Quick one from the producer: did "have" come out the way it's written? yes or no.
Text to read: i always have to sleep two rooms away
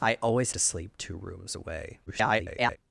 no